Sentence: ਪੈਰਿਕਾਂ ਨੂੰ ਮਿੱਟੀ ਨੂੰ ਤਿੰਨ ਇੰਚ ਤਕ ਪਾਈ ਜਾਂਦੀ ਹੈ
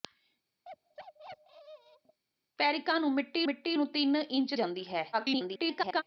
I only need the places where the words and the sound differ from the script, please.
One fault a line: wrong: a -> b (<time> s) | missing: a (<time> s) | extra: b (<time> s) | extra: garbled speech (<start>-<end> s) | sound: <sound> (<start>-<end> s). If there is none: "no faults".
sound: bark (0.6-2.2 s)
extra: ਮਿੱਟੀ (3.4 s)
missing: ਤਕ ਪਾਈ (4.5 s)
extra: garbled speech (5.1-6.0 s)